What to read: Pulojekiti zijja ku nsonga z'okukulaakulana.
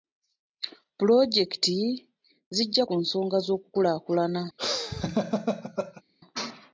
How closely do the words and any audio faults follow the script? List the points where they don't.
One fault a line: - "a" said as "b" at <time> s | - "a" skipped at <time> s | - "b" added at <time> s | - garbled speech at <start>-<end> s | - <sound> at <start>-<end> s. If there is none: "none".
- laugh at 4.6-6.0 s